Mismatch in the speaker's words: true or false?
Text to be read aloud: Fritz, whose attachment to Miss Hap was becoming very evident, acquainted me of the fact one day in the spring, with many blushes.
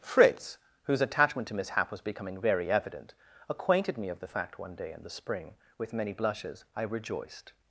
true